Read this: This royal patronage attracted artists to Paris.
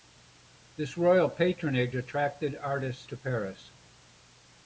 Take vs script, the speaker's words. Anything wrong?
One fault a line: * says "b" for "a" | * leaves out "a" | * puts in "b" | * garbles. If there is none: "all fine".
all fine